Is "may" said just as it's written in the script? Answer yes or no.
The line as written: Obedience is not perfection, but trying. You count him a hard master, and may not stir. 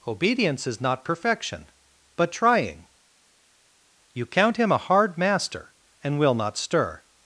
no